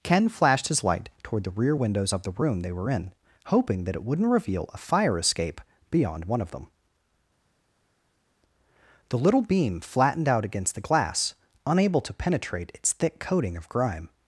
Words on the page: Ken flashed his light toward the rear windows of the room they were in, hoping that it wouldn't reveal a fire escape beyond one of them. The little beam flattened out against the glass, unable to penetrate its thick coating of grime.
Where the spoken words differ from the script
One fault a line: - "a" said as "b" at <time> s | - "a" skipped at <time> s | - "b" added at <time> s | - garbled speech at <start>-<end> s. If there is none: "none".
none